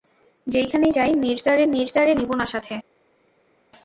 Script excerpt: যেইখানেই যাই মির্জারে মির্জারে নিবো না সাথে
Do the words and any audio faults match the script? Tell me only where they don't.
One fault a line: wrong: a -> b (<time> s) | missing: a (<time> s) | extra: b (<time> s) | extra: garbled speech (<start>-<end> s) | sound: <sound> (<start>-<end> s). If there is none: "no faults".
no faults